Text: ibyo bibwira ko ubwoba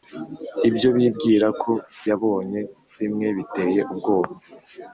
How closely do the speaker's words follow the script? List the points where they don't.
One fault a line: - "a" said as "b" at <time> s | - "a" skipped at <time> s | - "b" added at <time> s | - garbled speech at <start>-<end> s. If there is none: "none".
- "yabonye bimwe biteye" added at 2.1 s